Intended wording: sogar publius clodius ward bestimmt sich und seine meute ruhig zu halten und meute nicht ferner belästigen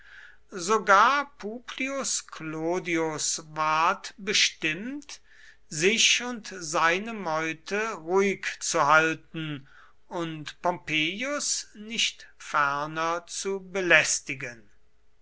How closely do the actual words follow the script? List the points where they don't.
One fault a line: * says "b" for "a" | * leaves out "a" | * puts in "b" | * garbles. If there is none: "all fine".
* says "pompeius" for "meute"
* puts in "zu"